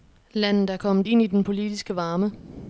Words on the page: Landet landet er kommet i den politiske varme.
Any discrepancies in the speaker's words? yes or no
yes